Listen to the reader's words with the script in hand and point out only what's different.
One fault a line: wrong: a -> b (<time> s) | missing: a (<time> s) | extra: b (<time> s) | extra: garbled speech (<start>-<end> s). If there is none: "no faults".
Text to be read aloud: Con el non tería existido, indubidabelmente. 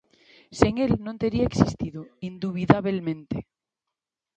wrong: Con -> Sen (0.6 s)